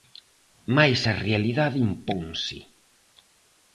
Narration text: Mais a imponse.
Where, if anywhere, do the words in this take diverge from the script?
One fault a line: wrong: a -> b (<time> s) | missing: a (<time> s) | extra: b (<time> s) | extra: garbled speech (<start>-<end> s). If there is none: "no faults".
extra: realidade (1.3 s)